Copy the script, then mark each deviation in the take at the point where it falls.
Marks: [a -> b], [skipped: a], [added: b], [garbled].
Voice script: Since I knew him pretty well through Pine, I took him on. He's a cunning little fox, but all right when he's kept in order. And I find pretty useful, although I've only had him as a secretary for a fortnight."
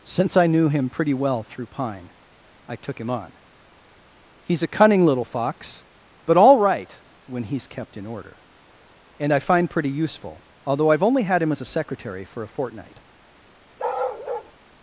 Since I knew him pretty well through Pine, I took him on. He's a cunning little fox, but all right when he's kept in order. And I find pretty useful, although I've only had him as a secretary for a fortnight."